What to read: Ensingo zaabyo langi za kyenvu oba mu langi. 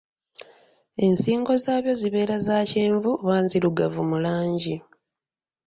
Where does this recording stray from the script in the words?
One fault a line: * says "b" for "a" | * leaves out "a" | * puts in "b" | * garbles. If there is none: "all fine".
* says "zibeera" for "langi"
* puts in "nzirugavu"